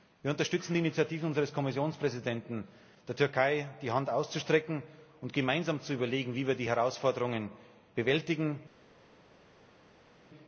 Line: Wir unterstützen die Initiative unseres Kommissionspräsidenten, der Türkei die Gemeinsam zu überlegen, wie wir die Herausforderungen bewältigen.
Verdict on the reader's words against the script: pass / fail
fail